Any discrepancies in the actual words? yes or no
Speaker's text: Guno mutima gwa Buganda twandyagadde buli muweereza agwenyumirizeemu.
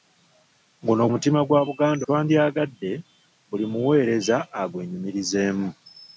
no